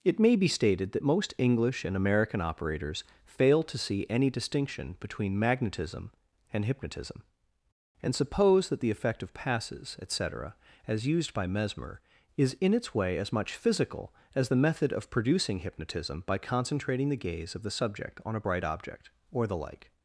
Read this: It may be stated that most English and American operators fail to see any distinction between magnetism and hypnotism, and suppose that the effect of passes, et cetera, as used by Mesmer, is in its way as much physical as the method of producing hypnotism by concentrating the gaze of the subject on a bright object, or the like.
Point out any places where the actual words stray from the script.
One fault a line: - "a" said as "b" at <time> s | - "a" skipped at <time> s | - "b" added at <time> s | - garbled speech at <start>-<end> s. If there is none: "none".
none